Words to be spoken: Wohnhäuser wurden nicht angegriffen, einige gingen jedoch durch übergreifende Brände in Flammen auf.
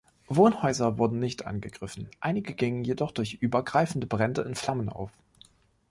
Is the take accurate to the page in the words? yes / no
yes